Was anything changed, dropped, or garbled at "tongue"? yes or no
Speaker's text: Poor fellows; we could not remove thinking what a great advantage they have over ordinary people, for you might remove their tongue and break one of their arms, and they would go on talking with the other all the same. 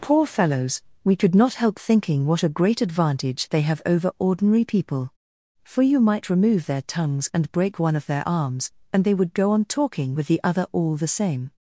yes